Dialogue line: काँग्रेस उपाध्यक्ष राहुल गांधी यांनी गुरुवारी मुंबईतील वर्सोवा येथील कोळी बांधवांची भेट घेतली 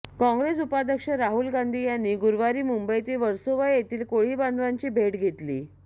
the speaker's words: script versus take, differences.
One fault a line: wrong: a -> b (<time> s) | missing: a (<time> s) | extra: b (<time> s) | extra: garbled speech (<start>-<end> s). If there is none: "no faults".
no faults